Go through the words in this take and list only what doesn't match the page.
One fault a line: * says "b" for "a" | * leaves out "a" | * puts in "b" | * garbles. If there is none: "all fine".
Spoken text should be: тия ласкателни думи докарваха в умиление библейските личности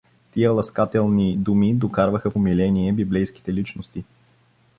all fine